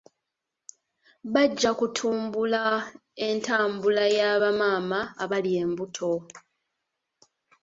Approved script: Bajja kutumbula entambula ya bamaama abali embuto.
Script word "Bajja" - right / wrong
right